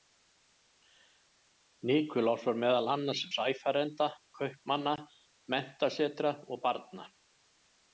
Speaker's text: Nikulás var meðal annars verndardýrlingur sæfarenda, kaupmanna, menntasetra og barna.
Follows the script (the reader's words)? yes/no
no